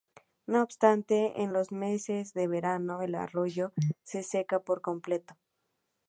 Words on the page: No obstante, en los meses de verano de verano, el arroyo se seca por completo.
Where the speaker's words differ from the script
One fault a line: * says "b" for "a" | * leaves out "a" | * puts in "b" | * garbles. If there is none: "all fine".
* leaves out "de verano"